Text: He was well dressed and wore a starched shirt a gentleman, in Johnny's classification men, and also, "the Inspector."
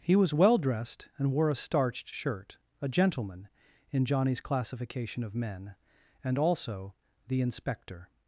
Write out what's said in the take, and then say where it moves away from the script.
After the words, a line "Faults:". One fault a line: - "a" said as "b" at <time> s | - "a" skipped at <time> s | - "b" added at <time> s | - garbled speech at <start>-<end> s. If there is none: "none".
He was well dressed and wore a starched shirt a gentleman, in Johnny's classification of men, and also, "the Inspector."
Faults:
- "of" added at 5.2 s